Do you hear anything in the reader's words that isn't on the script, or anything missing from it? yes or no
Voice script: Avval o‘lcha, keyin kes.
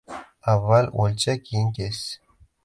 no